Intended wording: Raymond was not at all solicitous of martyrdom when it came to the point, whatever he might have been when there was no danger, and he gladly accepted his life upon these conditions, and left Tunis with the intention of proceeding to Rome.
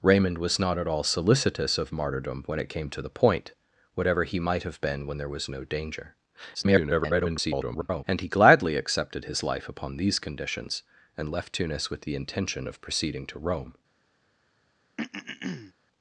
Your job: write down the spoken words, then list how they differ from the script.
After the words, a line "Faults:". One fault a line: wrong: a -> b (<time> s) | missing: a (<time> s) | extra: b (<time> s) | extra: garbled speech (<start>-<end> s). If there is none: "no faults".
Raymond was not at all solicitous of martyrdom when it came to the point, whatever he might have been when there was no danger, [garbled] and he gladly accepted his life upon these conditions, and left Tunis with the intention of proceeding to Rome.
Faults:
extra: garbled speech (6.5-8.0 s)